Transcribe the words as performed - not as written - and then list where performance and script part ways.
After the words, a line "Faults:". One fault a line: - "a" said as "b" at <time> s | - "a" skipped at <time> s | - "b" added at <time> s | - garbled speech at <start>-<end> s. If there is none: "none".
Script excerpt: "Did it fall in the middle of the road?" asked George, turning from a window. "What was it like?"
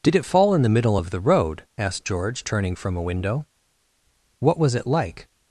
"Did it fall in the middle of the road?" asked George, turning from a window. "What was it like?"
Faults:
none